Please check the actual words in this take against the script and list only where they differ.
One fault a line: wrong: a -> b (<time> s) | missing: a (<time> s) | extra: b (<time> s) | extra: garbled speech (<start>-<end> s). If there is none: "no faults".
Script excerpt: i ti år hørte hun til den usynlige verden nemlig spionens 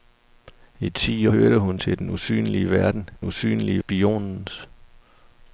missing: år (1.3 s)
wrong: nemlig -> usynlige (3.2 s)